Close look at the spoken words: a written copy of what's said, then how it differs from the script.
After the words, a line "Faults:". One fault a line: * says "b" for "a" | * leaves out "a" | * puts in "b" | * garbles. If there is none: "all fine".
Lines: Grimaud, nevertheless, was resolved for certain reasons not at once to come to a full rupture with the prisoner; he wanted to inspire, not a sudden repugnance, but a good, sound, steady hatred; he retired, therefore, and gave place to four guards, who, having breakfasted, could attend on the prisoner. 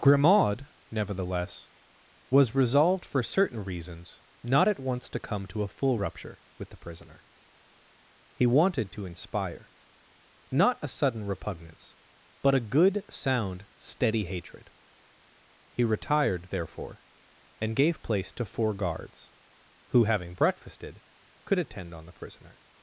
Grimaud, nevertheless, was resolved for certain reasons not at once to come to a full rupture with the prisoner; he wanted to inspire, not a sudden repugnance, but a good, sound, steady hatred; he retired, therefore, and gave place to four guards, who, having breakfasted, could attend on the prisoner.
Faults:
all fine